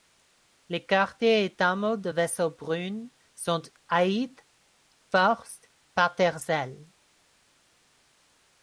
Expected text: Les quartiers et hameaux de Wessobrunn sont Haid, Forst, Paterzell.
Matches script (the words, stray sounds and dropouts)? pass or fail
pass